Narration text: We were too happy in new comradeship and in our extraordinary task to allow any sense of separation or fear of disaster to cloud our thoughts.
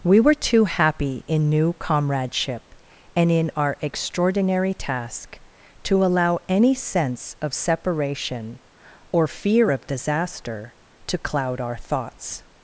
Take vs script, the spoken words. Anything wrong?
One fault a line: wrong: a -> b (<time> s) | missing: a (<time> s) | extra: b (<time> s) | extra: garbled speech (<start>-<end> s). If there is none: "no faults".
no faults